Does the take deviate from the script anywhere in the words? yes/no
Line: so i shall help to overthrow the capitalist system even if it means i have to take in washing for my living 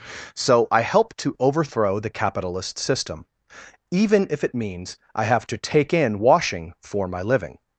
yes